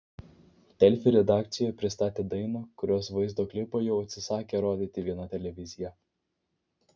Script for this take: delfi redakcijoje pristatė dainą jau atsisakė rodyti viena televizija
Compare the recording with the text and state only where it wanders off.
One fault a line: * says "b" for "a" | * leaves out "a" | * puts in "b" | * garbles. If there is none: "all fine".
* puts in "kurios vaizdo klipą"